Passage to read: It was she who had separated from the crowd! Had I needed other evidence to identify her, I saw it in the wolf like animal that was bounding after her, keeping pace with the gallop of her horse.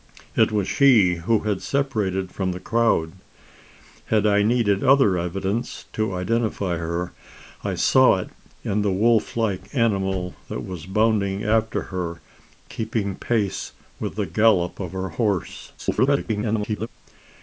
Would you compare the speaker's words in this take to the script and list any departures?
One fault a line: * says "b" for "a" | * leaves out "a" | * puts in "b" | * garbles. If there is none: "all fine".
* garbles